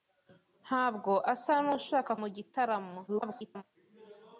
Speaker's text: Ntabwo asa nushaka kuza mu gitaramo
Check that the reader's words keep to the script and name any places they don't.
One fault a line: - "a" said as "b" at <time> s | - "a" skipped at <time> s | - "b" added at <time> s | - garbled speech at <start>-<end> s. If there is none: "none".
- "kuza" skipped at 2.1 s
- garbled speech at 3.1-3.6 s